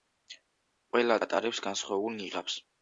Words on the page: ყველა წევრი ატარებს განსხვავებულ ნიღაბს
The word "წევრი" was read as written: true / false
false